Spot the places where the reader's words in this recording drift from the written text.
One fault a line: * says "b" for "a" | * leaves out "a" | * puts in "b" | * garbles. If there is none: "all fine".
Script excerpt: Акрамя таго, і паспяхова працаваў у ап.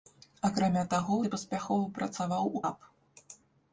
all fine